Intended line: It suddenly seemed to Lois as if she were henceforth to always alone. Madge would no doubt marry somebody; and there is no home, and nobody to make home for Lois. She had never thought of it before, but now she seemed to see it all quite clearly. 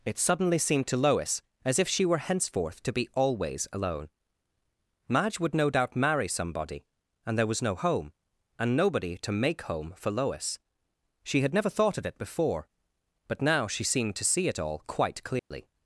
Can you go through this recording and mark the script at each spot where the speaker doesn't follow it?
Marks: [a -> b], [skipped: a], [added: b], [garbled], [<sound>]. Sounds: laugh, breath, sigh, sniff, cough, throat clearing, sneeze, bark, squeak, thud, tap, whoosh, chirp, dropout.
It suddenly seemed to Lois as if she were henceforth to [added: be] always alone. Madge would no doubt marry somebody; and there [is -> was] no home, and nobody to make home for Lois. She had never thought of it before, but now she seemed to see it all quite clearly. [dropout]